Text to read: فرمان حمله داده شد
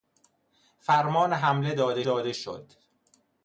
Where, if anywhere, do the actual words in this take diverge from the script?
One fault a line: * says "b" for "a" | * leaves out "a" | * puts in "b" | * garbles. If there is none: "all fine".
* puts in "داده"